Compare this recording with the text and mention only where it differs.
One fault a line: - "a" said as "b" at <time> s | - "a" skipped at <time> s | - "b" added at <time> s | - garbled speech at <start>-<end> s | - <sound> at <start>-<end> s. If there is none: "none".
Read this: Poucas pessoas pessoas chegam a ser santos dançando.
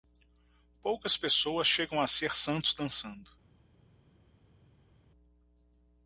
- "pessoas" skipped at 1.7 s